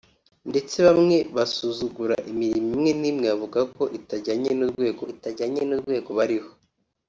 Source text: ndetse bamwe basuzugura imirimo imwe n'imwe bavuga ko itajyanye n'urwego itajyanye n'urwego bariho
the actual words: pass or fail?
pass